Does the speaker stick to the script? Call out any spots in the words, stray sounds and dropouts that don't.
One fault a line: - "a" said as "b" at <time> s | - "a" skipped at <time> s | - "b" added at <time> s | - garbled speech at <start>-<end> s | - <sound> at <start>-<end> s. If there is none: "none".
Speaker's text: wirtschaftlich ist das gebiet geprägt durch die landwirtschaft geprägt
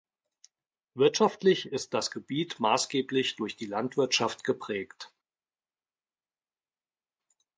- "geprägt" said as "maßgeblich" at 2.6 s